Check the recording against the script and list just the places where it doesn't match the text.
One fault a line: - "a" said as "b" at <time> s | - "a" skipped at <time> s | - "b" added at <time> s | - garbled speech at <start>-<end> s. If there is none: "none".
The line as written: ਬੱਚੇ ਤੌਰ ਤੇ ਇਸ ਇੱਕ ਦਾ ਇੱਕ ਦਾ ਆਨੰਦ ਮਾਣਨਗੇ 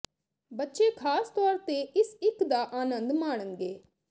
- "ਖਾਸ" added at 0.9 s
- "ਇੱਕ ਦਾ" skipped at 2.6 s